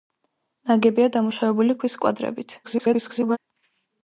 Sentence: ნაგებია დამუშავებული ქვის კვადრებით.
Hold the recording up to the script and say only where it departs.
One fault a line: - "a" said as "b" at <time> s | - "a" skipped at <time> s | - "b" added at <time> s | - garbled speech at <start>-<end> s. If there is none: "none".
- garbled speech at 2.6-3.4 s